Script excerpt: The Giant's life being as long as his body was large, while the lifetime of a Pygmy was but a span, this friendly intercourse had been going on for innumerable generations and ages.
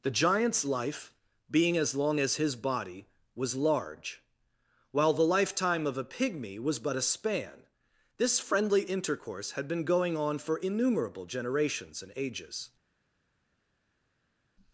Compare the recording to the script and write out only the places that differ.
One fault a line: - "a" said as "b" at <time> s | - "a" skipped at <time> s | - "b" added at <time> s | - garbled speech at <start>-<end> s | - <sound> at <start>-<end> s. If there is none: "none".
none